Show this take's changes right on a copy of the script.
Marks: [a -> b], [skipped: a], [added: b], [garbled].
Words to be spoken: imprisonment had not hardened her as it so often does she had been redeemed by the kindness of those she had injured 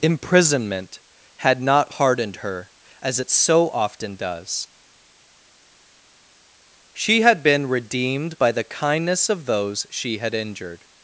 imprisonment had not hardened her as it so often does she had been redeemed by the kindness of those she had injured